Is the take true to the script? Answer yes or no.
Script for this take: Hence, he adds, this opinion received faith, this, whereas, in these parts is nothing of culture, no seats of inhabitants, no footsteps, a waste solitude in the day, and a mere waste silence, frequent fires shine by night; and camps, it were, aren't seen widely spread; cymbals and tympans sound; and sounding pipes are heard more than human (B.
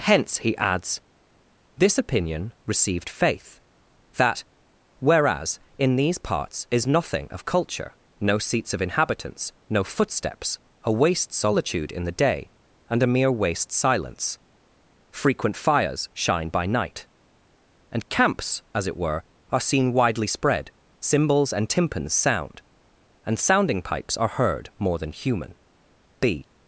no